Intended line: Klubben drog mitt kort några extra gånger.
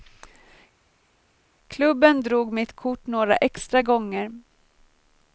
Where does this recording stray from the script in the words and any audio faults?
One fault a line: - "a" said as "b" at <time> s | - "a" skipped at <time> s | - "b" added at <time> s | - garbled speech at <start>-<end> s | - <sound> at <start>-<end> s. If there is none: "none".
none